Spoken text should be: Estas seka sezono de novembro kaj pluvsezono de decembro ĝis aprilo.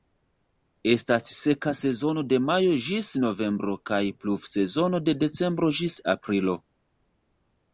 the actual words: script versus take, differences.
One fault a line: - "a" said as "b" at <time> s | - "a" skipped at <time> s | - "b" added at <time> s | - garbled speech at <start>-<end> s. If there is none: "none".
- "majo ĝis" added at 2.5 s